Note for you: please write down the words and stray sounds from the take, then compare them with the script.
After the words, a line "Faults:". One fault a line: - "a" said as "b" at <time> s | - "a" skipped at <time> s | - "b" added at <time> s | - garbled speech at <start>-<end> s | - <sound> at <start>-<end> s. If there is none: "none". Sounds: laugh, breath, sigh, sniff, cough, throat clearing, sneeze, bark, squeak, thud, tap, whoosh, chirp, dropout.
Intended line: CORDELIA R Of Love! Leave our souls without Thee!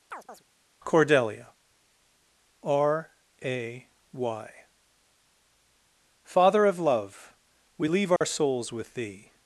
CORDELIA R A Y Father of Love! We leave our souls with Thee!
Faults:
- chirp at 0.1-0.4 s
- "A Y Father" added at 3.4 s
- "We" added at 7.8 s
- dropout at 8.2-8.2 s
- "without" said as "with" at 8.7 s